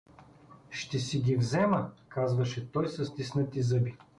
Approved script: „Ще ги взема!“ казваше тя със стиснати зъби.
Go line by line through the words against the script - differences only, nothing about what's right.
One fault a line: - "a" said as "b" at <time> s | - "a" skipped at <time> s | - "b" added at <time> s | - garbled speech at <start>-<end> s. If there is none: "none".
- "си" added at 1.0 s
- "тя" said as "той" at 2.7 s